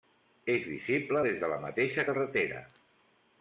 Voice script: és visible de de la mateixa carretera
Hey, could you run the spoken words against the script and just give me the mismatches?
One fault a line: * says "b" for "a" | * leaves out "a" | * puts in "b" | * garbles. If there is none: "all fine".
* says "des" for "de"